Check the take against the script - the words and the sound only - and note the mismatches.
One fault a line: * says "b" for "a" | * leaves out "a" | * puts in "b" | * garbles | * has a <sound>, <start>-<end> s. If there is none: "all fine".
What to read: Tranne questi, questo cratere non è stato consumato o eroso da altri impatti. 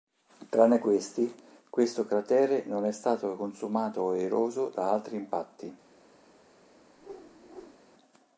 * has a whoosh, 7.0-7.8 s